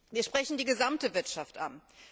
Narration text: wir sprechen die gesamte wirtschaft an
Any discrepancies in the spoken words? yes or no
no